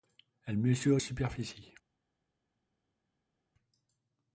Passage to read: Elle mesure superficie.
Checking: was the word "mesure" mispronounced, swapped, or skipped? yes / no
no